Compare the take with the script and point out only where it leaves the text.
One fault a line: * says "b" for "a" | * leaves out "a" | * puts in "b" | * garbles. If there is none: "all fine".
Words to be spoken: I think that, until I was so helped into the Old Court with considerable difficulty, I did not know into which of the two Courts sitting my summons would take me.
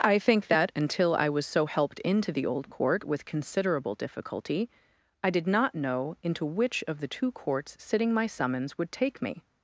all fine